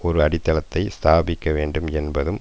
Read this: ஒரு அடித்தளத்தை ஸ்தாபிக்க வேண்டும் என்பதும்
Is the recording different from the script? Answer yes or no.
no